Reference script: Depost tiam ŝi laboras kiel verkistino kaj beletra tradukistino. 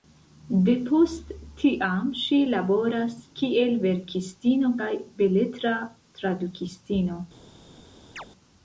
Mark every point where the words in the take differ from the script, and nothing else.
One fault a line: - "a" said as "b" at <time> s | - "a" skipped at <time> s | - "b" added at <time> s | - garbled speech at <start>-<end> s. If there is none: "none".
none